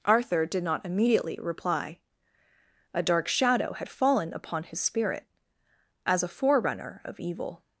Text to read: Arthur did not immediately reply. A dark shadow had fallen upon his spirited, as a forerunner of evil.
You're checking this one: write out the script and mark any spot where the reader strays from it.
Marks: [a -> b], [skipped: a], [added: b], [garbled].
Arthur did not immediately reply. A dark shadow had fallen upon his [spirited, -> spirit] as a forerunner of evil.